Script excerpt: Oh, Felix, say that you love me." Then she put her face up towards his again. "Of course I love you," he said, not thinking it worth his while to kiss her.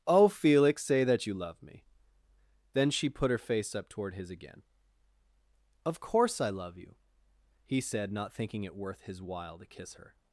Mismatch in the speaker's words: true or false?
true